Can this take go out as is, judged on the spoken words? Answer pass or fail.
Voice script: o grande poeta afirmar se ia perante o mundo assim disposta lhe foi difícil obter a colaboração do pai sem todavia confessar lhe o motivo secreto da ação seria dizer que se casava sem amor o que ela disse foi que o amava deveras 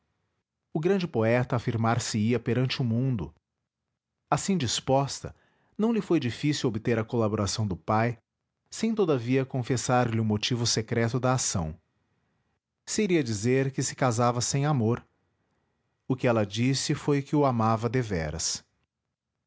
fail